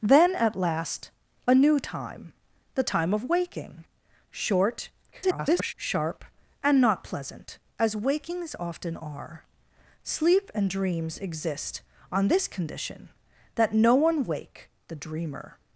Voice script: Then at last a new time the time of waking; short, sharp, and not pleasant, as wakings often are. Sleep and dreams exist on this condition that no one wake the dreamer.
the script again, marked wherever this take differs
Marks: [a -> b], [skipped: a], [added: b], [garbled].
Then at last a new time the time of waking; short, [garbled] sharp, and not pleasant, as wakings often are. Sleep and dreams exist on this condition that no one wake the dreamer.